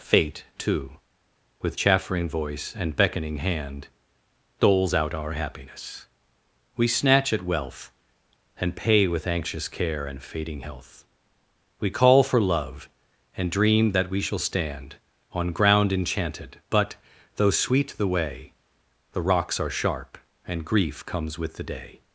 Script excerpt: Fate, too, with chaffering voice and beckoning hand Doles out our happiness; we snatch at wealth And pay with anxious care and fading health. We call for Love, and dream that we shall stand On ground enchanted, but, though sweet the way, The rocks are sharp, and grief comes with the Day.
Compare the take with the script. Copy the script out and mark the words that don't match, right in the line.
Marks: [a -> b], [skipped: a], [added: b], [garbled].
Fate, too, with chaffering voice and beckoning hand Doles out our happiness; we snatch at wealth And pay with anxious care and fading health. We call for Love, and dream that we shall stand On ground enchanted, but, though sweet the way, The rocks are sharp, and grief comes with the Day.